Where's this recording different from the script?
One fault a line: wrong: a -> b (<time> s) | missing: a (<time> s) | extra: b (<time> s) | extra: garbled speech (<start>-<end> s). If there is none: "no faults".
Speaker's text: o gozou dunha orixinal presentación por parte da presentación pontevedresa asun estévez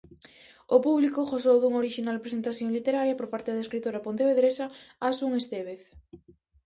extra: público (0.8 s)
extra: literaria (2.8 s)
wrong: presentación -> escritora (3.6 s)